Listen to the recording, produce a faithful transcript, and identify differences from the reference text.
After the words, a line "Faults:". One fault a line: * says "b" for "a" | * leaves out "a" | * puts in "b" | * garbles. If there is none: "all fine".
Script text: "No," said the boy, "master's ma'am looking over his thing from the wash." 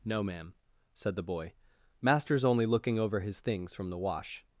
"No, ma'am," said the boy, "master's only looking over his things from the wash."
Faults:
* puts in "ma'am"
* says "only" for "ma'am"
* says "things" for "thing"